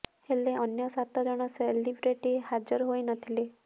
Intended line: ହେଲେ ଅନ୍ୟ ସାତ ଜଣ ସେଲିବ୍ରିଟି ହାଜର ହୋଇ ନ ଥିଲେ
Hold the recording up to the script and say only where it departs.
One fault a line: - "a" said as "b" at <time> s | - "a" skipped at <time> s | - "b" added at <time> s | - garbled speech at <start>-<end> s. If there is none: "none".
none